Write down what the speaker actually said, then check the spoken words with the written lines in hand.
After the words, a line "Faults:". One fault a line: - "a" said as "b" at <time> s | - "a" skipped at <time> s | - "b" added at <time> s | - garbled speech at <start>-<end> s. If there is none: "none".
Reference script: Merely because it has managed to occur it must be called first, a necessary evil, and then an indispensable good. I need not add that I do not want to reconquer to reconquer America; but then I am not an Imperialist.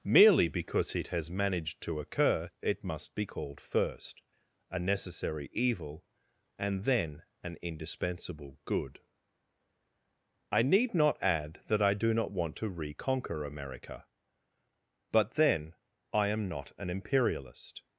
Merely because it has managed to occur it must be called first, a necessary evil, and then an indispensable good. I need not add that I do not want to reconquer America; but then I am not an Imperialist.
Faults:
- "to reconquer" skipped at 13.4 s